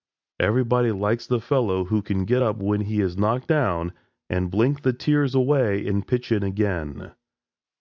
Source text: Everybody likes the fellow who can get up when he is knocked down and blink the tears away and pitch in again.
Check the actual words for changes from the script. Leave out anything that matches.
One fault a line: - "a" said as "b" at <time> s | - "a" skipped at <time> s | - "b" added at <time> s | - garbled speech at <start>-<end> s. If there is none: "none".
none